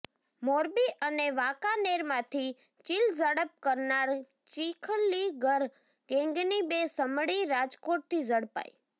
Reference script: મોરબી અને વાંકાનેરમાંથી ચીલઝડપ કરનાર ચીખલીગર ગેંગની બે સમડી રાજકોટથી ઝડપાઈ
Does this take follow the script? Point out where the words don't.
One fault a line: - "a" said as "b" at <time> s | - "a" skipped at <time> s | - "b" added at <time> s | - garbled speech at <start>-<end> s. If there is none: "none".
none